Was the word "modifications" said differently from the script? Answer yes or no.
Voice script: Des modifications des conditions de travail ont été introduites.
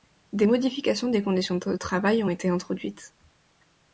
no